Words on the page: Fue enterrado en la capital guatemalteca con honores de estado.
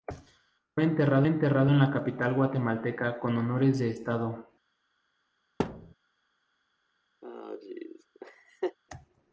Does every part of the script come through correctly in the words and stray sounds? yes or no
no